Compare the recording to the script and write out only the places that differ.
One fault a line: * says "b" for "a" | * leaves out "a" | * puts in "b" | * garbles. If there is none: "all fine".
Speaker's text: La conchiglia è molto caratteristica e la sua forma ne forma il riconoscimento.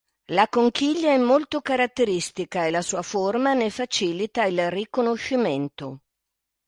* says "facilita" for "forma"